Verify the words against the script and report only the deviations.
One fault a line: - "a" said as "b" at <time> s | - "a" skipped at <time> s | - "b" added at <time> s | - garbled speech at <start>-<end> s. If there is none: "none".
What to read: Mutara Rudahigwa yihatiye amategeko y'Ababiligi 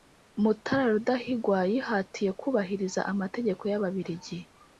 - "kubahiriza" added at 2.4 s